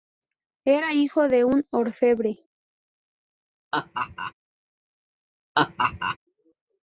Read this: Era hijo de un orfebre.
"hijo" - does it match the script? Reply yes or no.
yes